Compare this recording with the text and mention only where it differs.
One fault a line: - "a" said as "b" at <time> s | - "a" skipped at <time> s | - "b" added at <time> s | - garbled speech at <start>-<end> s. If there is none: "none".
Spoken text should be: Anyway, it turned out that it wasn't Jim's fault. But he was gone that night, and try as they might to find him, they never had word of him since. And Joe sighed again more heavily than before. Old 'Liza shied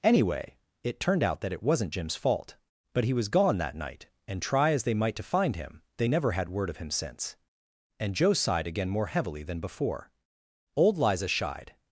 none